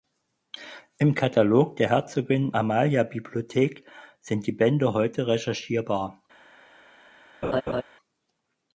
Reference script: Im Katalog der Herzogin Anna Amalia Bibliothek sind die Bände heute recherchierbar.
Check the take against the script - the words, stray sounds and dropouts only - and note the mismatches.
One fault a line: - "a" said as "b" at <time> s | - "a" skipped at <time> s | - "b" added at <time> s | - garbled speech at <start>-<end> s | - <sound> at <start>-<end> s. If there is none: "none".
- "Anna" skipped at 2.5 s
- laugh at 7.4-7.8 s